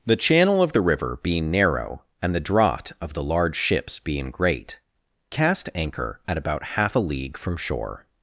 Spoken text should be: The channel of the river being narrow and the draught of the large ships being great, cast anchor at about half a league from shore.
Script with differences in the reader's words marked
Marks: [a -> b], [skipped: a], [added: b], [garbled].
The channel of the river being narrow and the draught of the large ships being great, cast anchor at about half a league from shore.